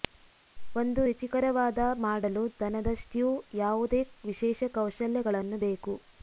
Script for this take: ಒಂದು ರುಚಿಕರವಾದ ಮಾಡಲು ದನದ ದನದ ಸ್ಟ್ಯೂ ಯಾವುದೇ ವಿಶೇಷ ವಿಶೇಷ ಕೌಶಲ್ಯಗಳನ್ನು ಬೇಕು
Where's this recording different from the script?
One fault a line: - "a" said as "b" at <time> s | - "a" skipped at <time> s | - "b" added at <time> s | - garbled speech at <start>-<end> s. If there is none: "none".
- "ದನದ" skipped at 2.9 s
- "ವಿಶೇಷ" skipped at 4.7 s